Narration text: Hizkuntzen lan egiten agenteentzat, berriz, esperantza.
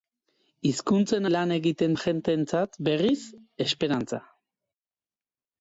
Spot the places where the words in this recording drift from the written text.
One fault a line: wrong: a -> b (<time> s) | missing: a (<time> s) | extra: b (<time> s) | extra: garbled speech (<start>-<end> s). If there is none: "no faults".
no faults